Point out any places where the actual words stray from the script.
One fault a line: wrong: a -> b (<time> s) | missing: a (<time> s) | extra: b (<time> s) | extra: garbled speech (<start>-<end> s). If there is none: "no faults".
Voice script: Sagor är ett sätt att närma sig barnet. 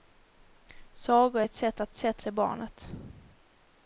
wrong: närma -> sätt (1.9 s)